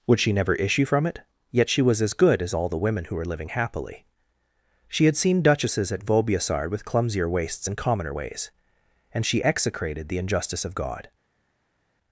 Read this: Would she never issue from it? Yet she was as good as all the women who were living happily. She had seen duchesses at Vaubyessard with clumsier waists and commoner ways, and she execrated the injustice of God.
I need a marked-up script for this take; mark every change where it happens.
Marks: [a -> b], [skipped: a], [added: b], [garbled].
Would she never issue from it? Yet she was as good as all the women who were living happily. She had seen duchesses at Vaubyessard with clumsier waists and commoner ways, and she execrated the injustice of God.